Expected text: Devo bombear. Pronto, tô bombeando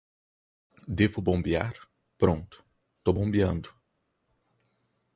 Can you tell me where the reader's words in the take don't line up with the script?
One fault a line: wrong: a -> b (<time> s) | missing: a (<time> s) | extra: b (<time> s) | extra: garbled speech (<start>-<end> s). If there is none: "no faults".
no faults